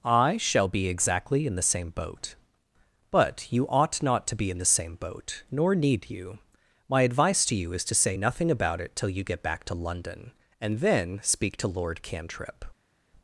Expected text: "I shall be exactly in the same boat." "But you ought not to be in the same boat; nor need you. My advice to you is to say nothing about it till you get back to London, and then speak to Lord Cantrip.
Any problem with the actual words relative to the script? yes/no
no